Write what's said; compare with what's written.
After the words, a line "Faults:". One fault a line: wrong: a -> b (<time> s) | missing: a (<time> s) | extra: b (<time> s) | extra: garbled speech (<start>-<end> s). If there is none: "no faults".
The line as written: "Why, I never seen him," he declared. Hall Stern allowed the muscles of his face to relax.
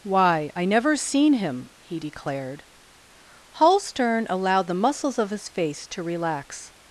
"Why, I never seen him," he declared. Hall Stern allowed the muscles of his face to relax.
Faults:
no faults